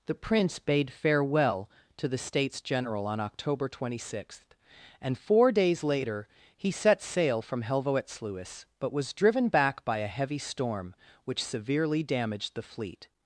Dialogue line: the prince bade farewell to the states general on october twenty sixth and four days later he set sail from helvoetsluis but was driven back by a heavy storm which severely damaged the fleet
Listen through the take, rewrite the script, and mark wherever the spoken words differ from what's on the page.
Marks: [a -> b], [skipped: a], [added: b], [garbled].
the prince bade farewell to the states general on october twenty sixth and four days later he set sail from helvoetsluis but was driven back by a heavy storm which severely damaged the fleet